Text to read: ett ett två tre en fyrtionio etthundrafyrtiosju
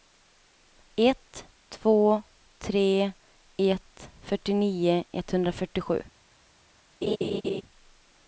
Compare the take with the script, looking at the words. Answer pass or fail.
fail